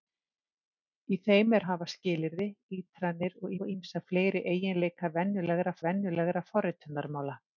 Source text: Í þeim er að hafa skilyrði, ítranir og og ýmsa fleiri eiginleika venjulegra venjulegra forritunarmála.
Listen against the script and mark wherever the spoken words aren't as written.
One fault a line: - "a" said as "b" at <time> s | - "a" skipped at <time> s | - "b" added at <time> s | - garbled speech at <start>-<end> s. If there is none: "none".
none